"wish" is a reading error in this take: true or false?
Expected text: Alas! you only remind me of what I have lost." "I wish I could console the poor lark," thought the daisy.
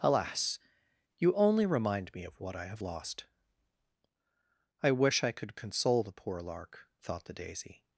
false